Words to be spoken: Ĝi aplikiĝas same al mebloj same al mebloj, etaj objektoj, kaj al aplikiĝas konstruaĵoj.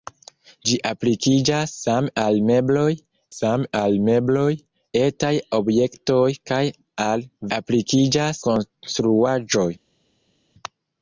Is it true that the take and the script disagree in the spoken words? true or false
false